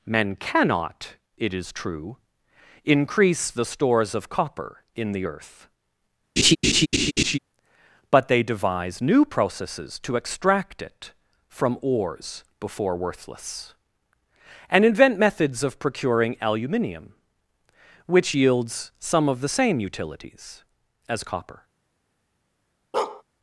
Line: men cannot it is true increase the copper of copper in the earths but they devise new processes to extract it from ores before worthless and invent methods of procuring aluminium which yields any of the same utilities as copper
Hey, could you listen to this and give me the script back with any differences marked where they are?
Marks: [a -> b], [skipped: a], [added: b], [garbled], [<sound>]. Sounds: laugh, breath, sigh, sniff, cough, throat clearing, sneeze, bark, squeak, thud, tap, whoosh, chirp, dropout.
men cannot it is true increase the [copper -> stores] of copper in the [earths -> earth] [laugh] but they devise new processes to extract it from ores before worthless and invent methods of procuring aluminium which yields [any -> some] of the same utilities as copper [bark]